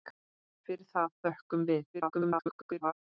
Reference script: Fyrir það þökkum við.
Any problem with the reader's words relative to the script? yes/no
yes